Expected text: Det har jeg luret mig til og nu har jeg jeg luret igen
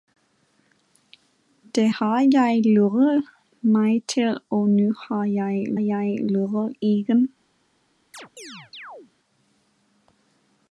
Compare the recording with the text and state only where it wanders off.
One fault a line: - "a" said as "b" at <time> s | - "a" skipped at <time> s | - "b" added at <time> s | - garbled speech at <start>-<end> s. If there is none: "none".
none